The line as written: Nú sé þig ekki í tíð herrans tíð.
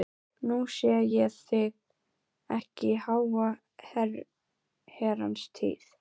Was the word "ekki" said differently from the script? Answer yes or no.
no